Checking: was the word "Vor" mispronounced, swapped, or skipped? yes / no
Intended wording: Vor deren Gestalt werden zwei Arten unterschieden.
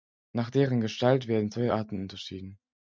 yes